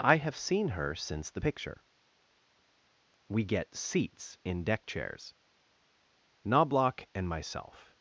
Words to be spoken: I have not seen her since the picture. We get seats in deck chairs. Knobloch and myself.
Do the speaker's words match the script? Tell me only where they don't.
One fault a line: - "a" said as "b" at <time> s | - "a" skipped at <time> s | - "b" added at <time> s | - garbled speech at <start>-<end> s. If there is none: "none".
- "not" skipped at 0.3 s